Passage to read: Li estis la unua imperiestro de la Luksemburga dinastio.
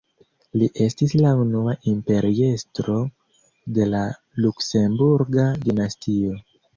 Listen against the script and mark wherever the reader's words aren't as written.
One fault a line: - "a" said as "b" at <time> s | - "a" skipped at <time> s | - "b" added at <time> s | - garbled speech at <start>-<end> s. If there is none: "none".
none